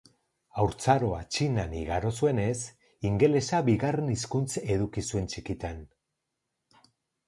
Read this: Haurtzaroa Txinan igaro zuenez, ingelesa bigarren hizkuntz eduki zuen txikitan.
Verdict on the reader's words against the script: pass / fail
pass